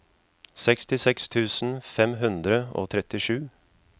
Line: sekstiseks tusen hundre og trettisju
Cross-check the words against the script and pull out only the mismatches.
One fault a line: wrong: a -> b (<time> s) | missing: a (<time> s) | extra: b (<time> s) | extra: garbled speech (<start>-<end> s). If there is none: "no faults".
extra: fem (1.9 s)